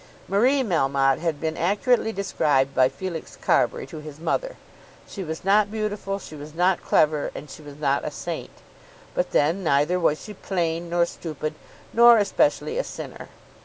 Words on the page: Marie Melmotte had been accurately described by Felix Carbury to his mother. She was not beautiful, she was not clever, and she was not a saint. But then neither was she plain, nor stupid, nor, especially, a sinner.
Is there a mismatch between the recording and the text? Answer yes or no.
no